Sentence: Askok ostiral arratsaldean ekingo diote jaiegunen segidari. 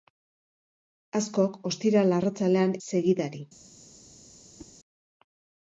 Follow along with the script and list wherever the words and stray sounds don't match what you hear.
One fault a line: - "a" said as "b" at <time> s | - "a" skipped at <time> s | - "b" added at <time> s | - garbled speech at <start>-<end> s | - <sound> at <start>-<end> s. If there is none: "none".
- "ekingo diote jaiegunen" skipped at 2.7 s
- whoosh at 4.6-4.7 s